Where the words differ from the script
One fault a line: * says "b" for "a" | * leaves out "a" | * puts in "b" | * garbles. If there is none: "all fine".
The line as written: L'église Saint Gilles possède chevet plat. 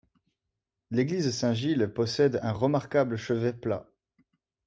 * puts in "un remarquable"